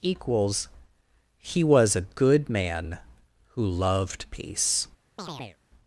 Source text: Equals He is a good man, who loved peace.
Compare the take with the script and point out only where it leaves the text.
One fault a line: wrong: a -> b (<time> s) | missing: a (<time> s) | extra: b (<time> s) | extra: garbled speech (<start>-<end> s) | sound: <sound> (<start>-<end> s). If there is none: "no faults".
wrong: is -> was (1.6 s)
sound: chirp (5.2-5.6 s)